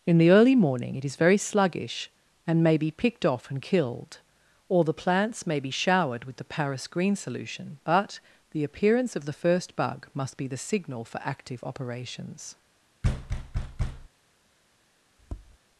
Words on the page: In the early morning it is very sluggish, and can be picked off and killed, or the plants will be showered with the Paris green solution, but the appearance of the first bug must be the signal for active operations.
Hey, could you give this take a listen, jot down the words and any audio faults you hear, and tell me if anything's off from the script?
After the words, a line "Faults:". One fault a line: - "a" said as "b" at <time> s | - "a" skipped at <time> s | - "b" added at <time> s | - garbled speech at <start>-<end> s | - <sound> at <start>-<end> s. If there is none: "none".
In the early morning it is very sluggish, and may be picked off and killed, or the plants may be showered with the Paris green solution, but the appearance of the first bug must be the signal for active operations.
Faults:
- "can" said as "may" at 2.6 s
- "will" said as "may" at 5.5 s
- thud at 13.0-14.1 s
- tap at 15.2-15.6 s